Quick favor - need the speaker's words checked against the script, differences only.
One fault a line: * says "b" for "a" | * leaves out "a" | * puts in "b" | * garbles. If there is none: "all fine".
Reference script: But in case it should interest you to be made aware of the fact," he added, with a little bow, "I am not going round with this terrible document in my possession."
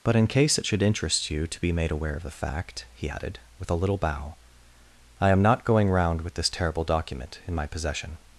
all fine